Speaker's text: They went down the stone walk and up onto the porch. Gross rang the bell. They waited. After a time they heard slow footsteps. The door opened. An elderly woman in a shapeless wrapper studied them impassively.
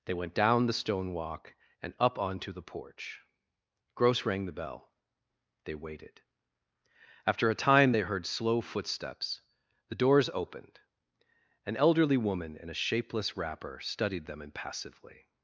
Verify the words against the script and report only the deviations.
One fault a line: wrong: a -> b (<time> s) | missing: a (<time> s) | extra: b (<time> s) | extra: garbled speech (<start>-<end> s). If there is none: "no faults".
wrong: door -> doors (10.0 s)